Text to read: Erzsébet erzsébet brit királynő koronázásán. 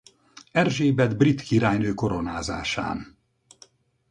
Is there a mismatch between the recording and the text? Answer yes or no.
yes